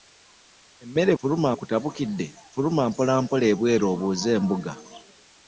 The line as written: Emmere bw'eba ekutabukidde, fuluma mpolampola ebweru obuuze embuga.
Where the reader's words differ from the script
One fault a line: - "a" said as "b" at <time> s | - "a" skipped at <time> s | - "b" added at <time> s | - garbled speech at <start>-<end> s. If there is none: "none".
- "bw'eba" said as "fuluma" at 1.2 s